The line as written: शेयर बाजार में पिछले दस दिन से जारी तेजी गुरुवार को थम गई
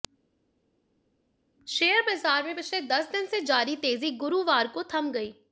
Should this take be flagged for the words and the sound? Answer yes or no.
no